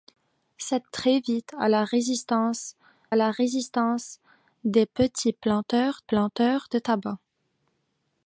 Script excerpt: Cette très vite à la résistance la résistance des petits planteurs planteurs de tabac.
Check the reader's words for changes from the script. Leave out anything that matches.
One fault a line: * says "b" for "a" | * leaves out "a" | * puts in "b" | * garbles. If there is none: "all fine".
all fine